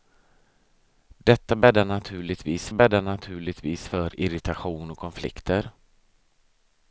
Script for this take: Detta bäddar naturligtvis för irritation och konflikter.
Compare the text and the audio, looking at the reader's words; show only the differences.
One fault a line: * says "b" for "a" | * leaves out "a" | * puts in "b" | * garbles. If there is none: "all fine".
* puts in "bäddar naturligtvis"